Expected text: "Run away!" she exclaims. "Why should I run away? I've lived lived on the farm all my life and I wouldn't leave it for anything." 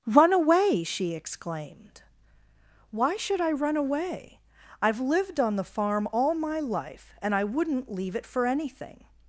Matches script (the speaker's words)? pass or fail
fail